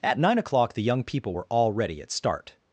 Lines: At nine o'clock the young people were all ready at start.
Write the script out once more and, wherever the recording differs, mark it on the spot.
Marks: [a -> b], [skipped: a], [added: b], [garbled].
At nine o'clock the young people were all ready at start.